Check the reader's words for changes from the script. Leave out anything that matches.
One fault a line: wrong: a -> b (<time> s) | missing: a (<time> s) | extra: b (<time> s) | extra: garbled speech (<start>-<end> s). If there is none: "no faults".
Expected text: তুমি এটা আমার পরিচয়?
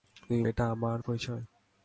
no faults